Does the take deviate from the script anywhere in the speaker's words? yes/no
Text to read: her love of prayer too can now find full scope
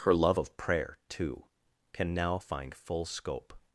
no